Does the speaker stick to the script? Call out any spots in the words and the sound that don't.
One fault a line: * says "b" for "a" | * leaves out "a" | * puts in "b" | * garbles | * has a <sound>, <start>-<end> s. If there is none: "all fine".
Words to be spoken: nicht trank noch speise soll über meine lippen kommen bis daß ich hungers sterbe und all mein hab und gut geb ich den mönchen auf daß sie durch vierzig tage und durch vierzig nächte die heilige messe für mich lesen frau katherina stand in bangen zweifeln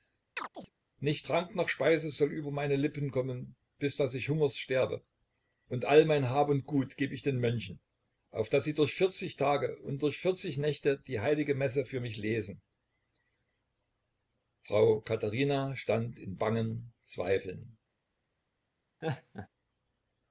* has a chirp, 0.4-0.7 s
* has a laugh, 19.0-19.5 s